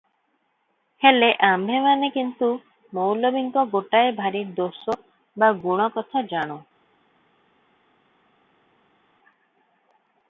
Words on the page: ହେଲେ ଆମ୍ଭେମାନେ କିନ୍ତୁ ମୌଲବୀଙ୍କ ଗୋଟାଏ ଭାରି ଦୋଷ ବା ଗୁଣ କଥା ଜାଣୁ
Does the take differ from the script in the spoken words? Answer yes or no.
no